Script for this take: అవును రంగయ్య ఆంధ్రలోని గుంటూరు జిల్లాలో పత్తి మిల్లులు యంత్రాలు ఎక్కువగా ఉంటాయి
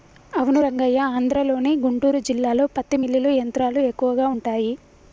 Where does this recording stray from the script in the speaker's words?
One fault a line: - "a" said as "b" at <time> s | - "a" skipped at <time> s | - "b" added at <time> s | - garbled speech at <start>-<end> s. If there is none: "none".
none